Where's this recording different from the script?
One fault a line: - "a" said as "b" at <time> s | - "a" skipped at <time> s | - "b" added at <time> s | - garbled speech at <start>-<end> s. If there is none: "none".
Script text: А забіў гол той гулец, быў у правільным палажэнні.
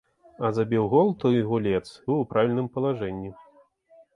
none